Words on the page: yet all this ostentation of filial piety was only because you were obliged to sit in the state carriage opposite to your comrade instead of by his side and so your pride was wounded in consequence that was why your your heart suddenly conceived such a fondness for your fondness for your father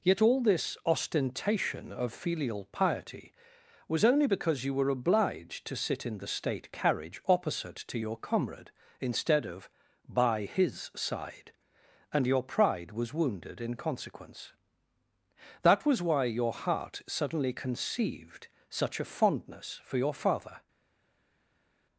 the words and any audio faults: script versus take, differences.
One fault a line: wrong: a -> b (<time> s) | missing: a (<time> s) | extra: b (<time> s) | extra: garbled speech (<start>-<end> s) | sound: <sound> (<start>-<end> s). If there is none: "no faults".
missing: so (12.3 s)
missing: your (16.5 s)
missing: fondness for your (20.1 s)